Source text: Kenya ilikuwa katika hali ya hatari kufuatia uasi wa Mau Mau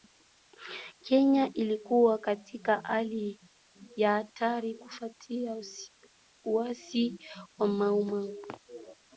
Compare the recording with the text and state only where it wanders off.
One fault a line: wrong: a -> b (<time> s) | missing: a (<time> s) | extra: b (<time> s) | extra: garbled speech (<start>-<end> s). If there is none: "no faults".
no faults